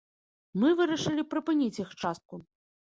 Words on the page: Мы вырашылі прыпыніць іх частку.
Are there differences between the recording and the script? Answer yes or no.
no